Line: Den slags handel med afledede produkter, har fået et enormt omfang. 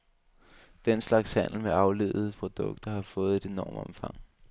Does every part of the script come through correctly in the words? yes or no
yes